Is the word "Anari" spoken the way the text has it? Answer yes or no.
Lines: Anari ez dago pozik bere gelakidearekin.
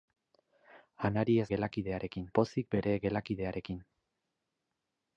yes